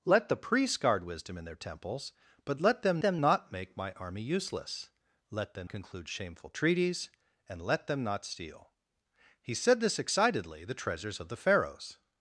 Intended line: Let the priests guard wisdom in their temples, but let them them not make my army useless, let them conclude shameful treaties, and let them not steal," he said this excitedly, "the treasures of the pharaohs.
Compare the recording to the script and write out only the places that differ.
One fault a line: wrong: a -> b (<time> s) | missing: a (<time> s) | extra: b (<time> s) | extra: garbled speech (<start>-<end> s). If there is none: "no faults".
no faults